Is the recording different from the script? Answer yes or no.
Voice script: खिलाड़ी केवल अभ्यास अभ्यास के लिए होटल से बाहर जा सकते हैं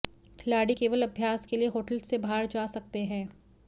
yes